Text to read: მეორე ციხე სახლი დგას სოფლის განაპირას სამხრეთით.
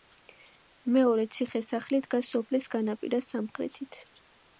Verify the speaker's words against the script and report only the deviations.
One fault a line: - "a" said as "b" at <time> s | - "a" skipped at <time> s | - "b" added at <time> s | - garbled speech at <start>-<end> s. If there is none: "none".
none